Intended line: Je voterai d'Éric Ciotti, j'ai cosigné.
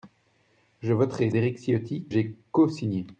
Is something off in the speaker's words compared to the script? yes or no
no